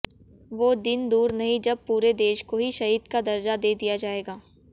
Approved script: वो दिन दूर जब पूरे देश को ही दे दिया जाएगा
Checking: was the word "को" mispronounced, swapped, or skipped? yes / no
no